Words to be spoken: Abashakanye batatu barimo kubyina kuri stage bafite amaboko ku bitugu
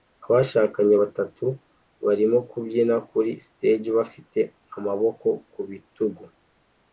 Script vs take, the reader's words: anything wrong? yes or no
no